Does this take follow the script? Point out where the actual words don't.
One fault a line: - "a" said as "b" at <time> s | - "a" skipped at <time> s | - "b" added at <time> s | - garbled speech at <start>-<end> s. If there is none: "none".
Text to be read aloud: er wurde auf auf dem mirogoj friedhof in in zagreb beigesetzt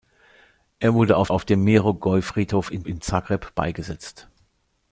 none